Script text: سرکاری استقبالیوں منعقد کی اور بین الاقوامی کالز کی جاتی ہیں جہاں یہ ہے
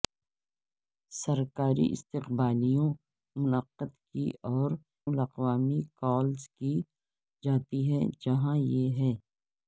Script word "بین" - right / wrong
wrong